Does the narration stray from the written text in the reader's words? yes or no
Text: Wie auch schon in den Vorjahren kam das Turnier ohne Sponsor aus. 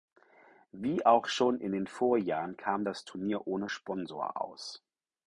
no